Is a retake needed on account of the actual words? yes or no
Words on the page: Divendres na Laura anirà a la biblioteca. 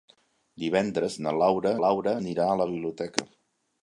yes